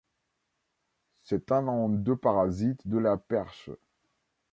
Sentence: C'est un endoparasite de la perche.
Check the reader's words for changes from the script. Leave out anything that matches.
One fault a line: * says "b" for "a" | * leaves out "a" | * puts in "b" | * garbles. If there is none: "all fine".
all fine